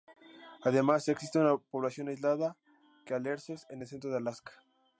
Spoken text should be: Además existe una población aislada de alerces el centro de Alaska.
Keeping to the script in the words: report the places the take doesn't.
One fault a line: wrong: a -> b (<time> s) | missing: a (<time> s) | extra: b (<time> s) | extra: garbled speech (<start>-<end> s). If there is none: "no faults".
extra: en (3.7 s)